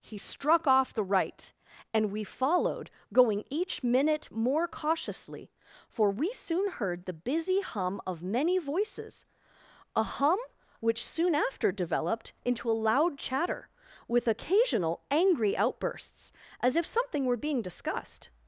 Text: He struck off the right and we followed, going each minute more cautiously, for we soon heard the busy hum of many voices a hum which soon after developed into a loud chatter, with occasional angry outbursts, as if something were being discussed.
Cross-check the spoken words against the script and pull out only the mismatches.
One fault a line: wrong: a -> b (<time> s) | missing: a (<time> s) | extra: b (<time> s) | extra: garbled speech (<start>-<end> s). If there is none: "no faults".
no faults